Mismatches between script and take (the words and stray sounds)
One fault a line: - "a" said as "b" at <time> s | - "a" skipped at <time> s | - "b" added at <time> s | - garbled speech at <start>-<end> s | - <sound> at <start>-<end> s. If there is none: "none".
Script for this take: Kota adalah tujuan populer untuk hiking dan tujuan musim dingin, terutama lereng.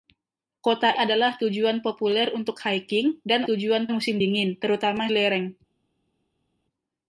none